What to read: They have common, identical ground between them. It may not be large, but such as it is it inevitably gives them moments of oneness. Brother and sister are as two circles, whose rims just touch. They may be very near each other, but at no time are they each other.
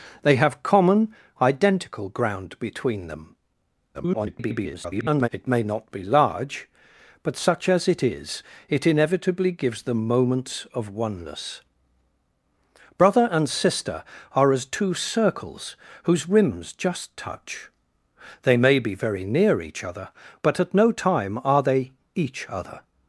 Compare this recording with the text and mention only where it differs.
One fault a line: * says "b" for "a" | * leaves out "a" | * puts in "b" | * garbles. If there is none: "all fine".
* garbles